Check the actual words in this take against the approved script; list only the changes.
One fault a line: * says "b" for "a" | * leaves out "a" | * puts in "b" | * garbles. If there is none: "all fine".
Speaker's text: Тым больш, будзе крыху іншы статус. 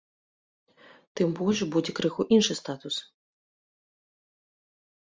all fine